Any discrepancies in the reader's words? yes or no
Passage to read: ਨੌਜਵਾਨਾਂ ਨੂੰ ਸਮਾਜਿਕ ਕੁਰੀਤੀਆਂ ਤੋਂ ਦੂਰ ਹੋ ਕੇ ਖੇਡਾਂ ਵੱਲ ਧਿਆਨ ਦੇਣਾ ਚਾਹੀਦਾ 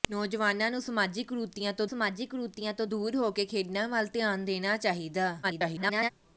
yes